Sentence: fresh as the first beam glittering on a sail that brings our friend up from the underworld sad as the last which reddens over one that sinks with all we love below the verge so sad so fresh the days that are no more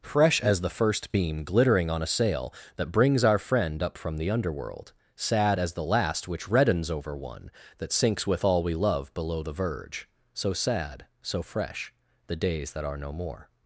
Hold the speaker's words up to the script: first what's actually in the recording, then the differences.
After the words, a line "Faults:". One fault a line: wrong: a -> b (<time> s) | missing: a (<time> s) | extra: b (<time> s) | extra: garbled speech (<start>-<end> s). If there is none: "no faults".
fresh as the first beam glittering on a sail that brings our friend up from the underworld sad as the last which reddens over one that sinks with all we love below the verge so sad so fresh the days that are no more
Faults:
no faults